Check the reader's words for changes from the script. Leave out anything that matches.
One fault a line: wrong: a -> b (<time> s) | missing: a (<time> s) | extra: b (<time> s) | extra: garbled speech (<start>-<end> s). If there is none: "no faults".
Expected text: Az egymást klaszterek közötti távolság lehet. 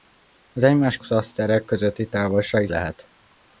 no faults